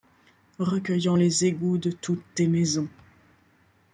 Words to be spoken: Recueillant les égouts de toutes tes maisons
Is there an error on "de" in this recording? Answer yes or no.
no